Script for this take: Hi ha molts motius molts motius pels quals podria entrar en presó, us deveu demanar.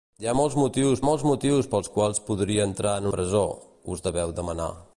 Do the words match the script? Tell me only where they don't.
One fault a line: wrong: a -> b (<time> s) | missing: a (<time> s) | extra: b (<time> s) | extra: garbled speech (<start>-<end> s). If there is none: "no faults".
no faults